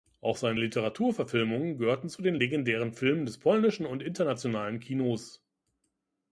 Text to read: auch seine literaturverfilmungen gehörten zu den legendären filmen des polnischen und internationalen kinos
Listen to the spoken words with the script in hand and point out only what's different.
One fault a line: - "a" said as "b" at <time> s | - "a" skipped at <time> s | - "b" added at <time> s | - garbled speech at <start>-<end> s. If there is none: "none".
none